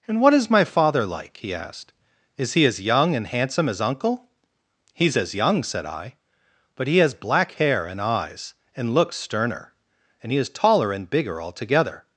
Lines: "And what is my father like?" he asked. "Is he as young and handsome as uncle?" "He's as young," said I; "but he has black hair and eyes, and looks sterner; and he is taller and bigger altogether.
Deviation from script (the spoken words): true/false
false